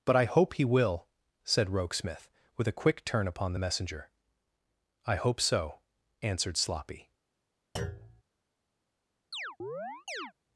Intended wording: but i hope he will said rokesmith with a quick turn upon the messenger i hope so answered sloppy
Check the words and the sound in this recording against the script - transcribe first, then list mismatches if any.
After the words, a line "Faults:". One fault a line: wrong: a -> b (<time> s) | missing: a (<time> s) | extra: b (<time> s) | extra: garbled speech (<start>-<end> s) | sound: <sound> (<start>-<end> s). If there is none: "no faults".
but i hope he will said rokesmith with a quick turn upon the messenger i hope so answered sloppy
Faults:
sound: thud (7.8-8.2 s)
sound: chirp (9.3-10.3 s)